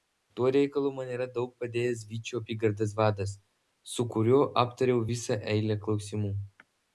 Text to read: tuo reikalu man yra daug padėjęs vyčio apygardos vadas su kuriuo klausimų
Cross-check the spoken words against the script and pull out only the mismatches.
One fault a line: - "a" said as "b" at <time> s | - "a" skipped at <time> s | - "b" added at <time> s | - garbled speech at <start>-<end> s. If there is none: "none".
- "aptariau visą eilę" added at 4.6 s